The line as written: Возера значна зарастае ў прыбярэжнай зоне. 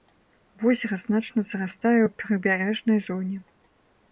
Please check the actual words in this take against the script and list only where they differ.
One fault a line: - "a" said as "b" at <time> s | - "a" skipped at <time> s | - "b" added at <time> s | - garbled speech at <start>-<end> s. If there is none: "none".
none